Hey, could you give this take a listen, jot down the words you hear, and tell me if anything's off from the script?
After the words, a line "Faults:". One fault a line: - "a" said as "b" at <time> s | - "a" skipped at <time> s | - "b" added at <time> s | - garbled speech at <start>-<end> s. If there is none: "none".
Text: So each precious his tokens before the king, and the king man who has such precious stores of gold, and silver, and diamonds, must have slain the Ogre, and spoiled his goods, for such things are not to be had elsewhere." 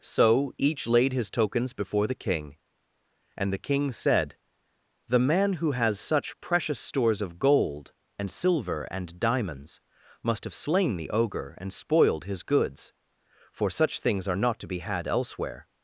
So each laid his tokens before the king, and the king said: "The man who has such precious stores of gold, and silver, and diamonds, must have slain the Ogre, and spoiled his goods, for such things are not to be had elsewhere."
Faults:
- "precious" said as "laid" at 0.9 s
- "said The" added at 3.9 s